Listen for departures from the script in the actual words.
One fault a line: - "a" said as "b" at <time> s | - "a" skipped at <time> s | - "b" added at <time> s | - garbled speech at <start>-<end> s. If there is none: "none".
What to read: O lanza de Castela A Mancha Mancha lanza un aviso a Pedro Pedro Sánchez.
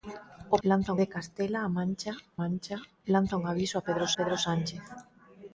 none